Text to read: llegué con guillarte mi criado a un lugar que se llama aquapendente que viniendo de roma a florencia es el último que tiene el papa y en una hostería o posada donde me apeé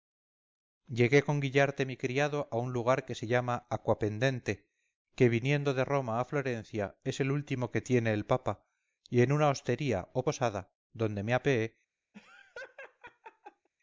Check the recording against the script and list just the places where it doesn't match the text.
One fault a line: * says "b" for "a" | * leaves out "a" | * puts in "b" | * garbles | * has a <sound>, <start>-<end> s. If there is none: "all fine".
* has a laugh, 12.1-13.7 s